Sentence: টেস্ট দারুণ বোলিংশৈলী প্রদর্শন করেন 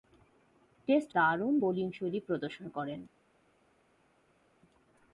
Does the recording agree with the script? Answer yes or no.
yes